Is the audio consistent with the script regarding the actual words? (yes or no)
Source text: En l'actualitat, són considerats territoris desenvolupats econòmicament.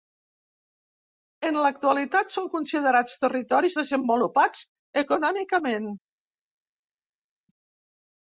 yes